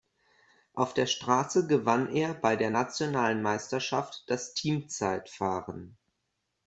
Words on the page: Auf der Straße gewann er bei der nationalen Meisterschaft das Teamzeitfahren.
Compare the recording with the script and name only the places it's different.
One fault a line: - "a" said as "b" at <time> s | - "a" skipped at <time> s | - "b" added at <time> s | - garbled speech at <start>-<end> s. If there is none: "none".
none